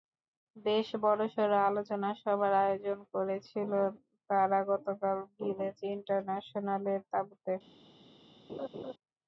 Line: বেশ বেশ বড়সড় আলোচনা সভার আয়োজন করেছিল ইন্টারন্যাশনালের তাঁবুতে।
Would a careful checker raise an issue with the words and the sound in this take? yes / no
yes